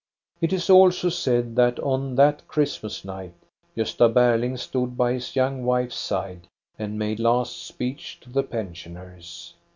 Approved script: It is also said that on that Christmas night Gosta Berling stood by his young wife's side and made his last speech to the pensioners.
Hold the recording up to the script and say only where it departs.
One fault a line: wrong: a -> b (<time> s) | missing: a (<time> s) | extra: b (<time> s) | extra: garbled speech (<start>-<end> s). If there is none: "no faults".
missing: his (7.2 s)